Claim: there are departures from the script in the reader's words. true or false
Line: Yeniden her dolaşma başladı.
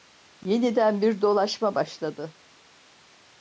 true